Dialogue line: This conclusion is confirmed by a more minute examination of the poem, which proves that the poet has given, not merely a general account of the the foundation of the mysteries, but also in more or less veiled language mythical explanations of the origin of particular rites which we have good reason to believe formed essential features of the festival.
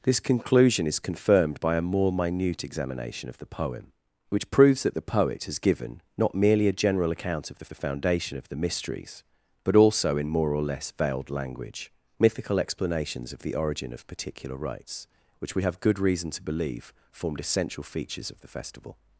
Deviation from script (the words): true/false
false